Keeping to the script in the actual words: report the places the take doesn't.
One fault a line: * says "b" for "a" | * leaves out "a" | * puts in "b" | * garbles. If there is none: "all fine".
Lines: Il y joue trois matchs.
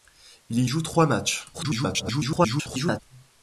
* garbles